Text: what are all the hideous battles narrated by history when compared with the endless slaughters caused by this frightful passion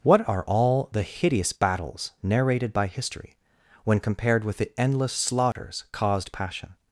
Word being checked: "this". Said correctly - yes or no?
no